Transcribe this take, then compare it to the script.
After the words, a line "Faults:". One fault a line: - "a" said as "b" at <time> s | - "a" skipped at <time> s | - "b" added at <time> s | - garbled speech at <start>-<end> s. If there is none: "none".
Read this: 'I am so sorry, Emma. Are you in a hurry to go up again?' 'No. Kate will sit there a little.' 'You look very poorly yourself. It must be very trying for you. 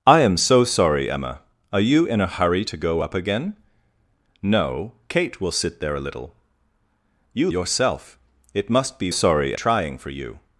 'I am so sorry, Emma. Are you in a hurry to go up again?' 'No. Kate will sit there a little.' 'You yourself. It must be sorry trying for you.
Faults:
- "look very poorly" skipped at 7.5 s
- "very" said as "sorry" at 9.1 s